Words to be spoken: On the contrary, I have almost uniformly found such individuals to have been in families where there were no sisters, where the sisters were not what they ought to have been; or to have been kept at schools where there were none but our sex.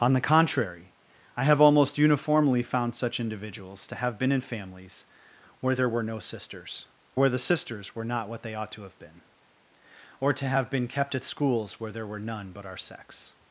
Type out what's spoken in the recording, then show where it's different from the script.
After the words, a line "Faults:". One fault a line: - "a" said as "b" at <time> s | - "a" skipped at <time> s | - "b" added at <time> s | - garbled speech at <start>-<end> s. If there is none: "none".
On the contrary, I have almost uniformly found such individuals to have been in families where there were no sisters, where the sisters were not what they ought to have been; or to have been kept at schools where there were none but our sex.
Faults:
none